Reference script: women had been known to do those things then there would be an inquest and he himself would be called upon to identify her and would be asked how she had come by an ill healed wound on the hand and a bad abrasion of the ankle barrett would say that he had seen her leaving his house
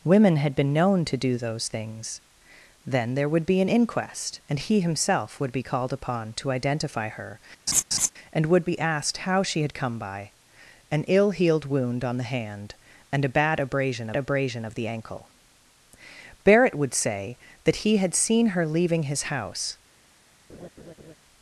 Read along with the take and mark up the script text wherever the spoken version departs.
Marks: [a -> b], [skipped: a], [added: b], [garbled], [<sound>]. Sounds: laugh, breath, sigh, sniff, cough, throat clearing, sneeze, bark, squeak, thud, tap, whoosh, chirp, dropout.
women had been known to do those things then there would be an inquest and he himself would be called upon to identify her [laugh] and would be asked how she had come by an ill healed wound on the hand and a bad abrasion [added: abrasion] of the ankle barrett would say that he had seen her leaving his house [laugh]